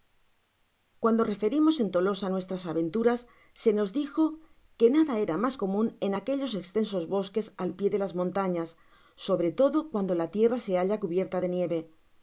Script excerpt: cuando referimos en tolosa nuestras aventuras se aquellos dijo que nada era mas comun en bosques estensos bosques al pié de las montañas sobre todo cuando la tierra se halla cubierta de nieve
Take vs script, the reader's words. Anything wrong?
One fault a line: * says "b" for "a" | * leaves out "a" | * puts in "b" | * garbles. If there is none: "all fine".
* says "nos" for "aquellos"
* says "aquellos" for "bosques"